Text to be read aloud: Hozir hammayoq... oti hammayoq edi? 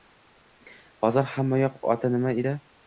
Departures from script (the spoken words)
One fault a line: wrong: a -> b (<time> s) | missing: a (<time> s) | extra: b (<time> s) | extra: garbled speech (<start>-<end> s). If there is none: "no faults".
wrong: hammayoq -> nima (2.2 s)